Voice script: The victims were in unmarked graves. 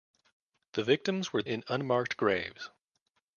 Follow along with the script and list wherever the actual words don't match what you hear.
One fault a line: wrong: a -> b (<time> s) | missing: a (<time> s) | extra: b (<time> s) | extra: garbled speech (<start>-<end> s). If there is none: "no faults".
no faults